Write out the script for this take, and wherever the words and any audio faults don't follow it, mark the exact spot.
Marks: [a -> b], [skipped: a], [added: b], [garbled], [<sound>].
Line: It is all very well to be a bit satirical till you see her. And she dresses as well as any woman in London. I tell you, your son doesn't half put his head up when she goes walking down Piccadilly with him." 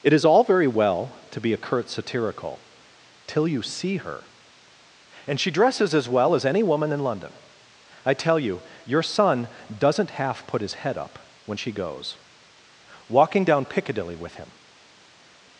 It is all very well to be a [bit -> curt] satirical till you see her. And she dresses as well as any woman in London. I tell you, your son doesn't half put his head up when she goes walking down Piccadilly with him."